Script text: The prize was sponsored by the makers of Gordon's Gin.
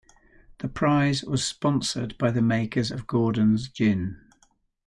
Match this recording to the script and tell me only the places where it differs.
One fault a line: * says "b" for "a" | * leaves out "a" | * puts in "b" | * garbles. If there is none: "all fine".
all fine